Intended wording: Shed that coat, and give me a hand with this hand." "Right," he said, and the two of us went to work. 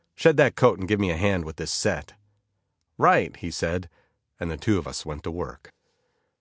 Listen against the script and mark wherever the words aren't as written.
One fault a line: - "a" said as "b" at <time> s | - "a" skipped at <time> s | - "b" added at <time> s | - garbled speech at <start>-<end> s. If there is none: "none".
- "hand" said as "set" at 1.7 s